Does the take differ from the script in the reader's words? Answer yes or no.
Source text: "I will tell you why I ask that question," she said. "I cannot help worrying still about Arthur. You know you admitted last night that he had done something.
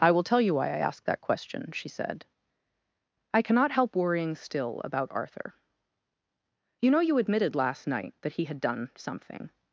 no